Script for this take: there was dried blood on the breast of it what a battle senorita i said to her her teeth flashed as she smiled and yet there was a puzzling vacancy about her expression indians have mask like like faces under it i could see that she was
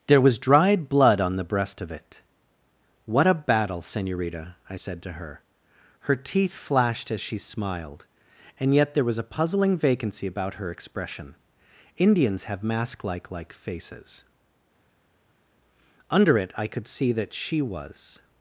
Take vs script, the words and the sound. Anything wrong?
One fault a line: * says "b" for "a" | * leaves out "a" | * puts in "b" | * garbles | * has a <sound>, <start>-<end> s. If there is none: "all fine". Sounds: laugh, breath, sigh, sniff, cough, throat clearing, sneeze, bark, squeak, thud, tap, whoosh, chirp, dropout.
all fine